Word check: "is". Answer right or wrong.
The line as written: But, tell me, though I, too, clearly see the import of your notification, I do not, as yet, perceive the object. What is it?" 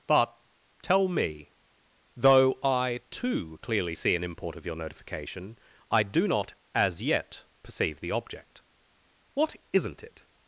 wrong